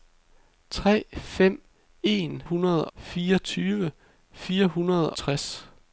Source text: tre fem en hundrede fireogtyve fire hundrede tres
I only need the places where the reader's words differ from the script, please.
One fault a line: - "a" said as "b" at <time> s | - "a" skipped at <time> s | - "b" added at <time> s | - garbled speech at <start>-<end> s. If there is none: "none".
none